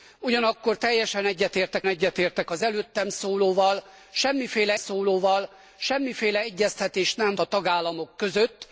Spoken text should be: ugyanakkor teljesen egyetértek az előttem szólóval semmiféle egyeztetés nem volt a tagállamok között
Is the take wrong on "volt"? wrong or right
wrong